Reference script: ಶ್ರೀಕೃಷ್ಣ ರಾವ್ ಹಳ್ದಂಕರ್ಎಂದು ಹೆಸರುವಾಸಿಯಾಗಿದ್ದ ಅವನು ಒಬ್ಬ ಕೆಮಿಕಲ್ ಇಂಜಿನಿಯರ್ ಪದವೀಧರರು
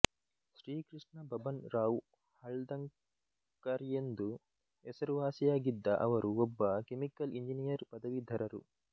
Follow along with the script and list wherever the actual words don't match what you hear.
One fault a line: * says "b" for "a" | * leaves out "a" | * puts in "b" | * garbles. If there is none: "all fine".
* puts in "ಬಬನ್"
* says "ಅವರು" for "ಅವನು"